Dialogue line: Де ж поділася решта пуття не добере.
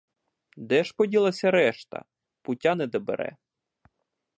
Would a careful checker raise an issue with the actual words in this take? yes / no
no